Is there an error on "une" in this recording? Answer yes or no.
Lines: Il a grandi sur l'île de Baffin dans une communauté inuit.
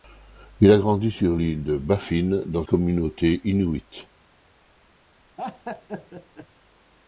yes